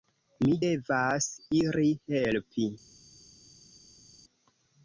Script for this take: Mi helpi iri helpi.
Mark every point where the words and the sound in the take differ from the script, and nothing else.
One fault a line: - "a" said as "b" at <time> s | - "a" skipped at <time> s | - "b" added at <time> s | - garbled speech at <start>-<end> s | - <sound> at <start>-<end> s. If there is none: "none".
- "helpi" said as "devas" at 0.6 s